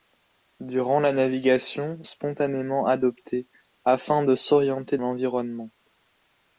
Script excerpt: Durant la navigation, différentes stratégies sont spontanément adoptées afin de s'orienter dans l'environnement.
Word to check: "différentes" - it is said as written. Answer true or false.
false